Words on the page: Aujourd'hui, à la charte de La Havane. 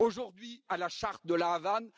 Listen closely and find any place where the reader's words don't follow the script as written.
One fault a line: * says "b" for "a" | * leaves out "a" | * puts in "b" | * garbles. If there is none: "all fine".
all fine